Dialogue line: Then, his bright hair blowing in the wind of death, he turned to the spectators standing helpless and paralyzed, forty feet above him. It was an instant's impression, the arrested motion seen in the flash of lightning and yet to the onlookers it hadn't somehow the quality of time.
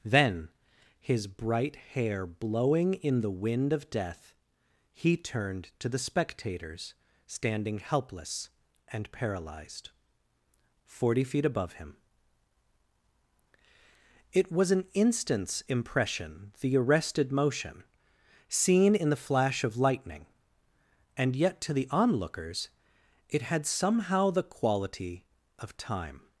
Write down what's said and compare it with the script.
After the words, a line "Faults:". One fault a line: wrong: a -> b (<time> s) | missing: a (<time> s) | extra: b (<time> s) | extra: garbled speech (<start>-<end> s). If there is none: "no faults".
Then, his bright hair blowing in the wind of death, he turned to the spectators standing helpless and paralyzed, forty feet above him. It was an instant's impression, the arrested motion seen in the flash of lightning and yet to the onlookers it had somehow the quality of time.
Faults:
wrong: hadn't -> had (23.4 s)